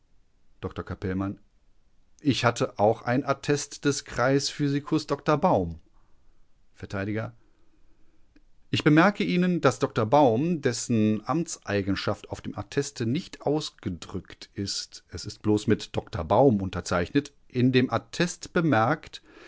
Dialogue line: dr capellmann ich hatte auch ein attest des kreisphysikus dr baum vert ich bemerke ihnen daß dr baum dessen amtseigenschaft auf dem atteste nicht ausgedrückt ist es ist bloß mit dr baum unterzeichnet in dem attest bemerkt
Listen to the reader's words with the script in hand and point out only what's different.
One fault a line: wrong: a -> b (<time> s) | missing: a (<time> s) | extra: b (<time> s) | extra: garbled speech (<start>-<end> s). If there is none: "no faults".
no faults